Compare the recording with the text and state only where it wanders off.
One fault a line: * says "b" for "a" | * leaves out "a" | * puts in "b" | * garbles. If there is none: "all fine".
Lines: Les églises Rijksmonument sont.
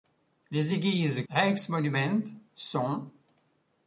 all fine